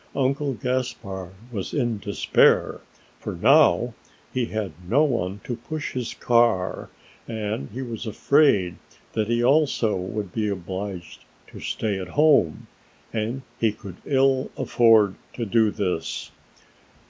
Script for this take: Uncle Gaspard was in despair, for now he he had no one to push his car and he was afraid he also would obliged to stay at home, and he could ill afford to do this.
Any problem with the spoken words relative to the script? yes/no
yes